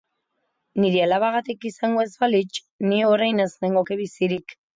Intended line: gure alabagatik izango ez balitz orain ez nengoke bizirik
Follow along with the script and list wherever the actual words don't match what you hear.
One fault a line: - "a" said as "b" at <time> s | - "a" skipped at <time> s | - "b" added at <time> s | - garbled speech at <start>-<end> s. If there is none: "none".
- "gure" said as "nire" at 0.8 s
- "ni" added at 2.9 s